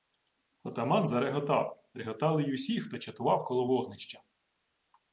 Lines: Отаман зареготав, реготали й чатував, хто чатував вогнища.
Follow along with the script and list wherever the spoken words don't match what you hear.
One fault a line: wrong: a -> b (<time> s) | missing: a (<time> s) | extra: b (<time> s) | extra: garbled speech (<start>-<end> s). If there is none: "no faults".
wrong: чатував -> усі (2.5 s)
extra: коло (3.4 s)